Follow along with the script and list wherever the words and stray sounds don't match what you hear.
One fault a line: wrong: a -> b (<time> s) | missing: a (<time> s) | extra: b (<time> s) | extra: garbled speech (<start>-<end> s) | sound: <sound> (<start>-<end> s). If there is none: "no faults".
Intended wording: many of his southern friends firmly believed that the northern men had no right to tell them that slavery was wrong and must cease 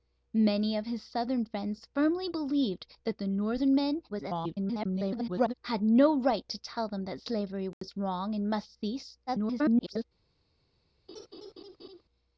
extra: garbled speech (4.1-5.5 s)
sound: dropout (7.7-7.8 s)
extra: garbled speech (9.3-10.0 s)
sound: laugh (11.1-12.0 s)